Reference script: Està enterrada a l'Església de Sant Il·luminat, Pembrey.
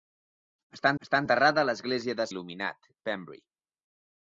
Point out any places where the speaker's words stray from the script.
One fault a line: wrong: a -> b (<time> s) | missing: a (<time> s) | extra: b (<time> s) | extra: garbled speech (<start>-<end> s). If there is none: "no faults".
extra: està (1.1 s)
missing: Sant (2.3 s)